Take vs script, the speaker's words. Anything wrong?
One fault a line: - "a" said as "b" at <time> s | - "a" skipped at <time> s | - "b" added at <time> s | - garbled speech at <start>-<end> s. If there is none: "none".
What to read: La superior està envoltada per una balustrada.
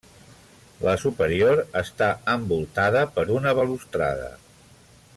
none